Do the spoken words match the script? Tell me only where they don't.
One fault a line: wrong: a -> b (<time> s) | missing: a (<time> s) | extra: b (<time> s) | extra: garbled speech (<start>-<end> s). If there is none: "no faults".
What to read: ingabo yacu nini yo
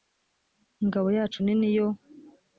no faults